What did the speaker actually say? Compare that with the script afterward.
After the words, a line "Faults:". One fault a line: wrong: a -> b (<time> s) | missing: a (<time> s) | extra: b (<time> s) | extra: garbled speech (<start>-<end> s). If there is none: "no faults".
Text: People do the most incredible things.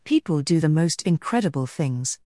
People do the most incredible things.
Faults:
no faults